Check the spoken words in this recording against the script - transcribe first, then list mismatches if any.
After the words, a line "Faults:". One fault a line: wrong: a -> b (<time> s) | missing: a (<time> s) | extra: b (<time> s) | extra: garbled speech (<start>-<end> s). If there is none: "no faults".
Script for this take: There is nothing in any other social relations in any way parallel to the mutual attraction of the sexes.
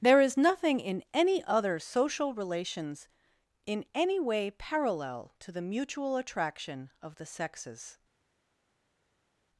There is nothing in any other social relations in any way parallel to the mutual attraction of the sexes.
Faults:
no faults